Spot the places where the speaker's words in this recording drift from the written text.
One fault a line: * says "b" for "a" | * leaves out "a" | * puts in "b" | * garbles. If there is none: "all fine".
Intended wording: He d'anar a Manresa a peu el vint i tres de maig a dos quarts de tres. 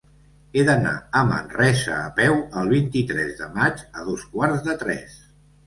all fine